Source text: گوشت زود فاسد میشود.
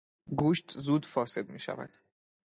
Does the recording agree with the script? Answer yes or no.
yes